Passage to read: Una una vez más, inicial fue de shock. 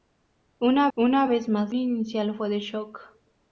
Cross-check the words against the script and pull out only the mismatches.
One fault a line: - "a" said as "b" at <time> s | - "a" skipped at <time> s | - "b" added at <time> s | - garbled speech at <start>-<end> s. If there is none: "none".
none